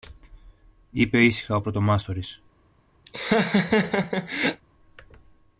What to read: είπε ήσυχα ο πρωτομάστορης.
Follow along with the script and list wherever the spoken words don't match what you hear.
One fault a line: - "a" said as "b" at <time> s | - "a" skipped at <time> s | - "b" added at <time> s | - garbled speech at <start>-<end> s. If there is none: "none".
none